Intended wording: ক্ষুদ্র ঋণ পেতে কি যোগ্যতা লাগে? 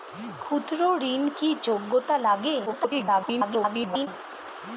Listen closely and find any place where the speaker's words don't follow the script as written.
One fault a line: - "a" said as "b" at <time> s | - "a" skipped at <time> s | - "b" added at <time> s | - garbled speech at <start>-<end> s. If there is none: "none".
- "পেতে" skipped at 1.2 s
- garbled speech at 2.7-4.1 s